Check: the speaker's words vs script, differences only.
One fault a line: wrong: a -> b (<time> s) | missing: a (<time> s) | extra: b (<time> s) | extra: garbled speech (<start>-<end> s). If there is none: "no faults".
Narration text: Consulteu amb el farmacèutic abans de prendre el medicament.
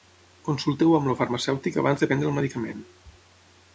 no faults